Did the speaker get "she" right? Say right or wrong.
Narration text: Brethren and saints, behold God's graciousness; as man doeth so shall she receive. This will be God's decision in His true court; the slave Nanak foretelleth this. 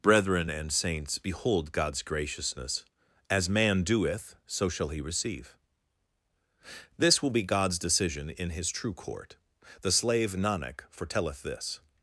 wrong